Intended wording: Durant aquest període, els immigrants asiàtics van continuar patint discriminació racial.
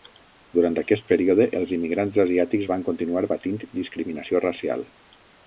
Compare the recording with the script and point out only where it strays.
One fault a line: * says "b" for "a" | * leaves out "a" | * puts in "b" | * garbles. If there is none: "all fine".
all fine